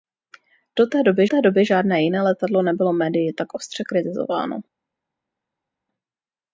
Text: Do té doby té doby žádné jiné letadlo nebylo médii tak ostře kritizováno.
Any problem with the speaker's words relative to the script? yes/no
no